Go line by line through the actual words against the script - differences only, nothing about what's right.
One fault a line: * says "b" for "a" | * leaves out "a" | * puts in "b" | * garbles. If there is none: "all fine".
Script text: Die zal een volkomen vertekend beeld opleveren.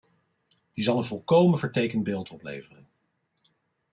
all fine